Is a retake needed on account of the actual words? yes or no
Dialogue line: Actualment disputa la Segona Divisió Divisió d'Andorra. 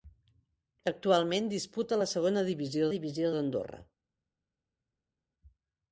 no